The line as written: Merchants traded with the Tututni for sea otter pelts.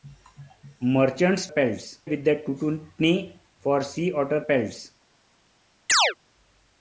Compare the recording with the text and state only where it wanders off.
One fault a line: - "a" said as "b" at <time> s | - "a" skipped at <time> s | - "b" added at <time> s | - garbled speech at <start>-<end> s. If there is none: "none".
- "traded" said as "pelts" at 1.5 s